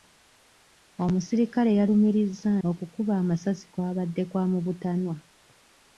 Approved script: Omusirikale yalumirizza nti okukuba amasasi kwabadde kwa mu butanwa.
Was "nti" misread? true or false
true